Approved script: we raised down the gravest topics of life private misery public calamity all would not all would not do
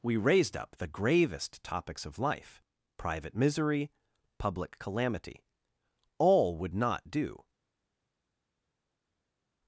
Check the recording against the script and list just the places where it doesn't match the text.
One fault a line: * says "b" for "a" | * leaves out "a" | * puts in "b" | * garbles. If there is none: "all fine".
* says "up" for "down"
* leaves out "all would not"